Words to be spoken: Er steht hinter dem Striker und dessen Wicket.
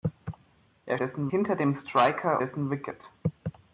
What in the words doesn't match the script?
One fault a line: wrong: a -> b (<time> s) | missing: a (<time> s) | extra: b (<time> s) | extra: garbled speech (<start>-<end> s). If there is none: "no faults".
wrong: steht -> dessen (1.0 s)
missing: und (2.4 s)